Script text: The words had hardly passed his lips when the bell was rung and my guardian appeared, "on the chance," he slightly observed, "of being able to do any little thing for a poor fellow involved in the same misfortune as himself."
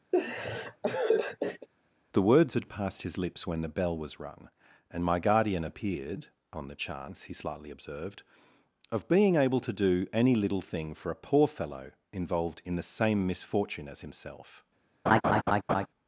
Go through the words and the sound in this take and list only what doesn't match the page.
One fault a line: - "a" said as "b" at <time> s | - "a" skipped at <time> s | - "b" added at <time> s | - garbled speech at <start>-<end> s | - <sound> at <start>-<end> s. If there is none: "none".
- laugh at 0.1-1.7 s
- "hardly" skipped at 2.7 s
- laugh at 15.1-15.9 s